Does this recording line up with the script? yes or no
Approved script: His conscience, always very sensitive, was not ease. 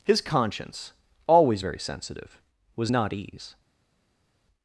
yes